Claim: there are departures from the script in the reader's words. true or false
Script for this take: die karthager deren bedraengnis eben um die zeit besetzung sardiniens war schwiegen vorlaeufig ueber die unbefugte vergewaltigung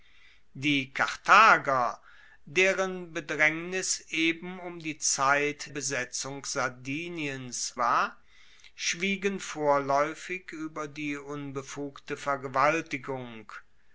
false